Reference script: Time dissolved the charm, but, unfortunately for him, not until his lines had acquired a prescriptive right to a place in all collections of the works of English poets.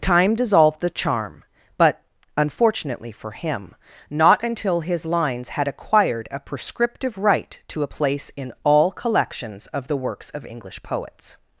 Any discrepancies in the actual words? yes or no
no